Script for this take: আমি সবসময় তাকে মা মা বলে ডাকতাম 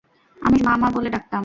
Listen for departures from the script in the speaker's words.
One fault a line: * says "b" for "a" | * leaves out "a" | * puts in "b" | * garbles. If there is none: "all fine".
* leaves out "সবসময় তাকে"